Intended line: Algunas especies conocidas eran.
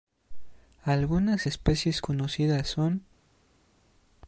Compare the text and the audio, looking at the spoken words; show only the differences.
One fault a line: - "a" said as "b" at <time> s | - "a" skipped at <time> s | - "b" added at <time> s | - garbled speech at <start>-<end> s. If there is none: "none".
- "eran" said as "son" at 2.7 s